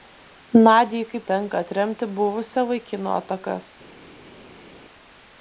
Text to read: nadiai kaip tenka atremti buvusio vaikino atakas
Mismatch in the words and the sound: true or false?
false